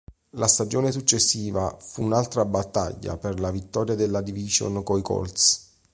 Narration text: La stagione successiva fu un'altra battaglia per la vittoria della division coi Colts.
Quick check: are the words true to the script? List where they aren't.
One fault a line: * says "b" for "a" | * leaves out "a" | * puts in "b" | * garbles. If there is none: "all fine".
all fine